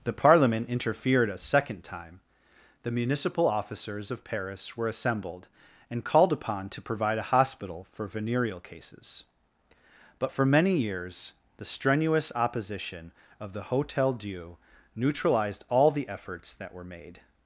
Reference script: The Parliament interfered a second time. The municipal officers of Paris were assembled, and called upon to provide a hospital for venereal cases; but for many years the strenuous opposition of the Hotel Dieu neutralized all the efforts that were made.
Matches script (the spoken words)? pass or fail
pass